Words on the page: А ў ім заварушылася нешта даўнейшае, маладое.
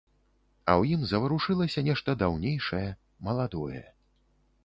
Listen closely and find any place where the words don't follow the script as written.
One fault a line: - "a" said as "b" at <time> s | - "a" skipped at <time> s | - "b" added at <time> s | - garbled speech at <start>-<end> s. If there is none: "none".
none